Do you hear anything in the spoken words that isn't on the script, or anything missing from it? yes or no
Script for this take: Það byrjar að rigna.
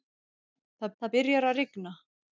yes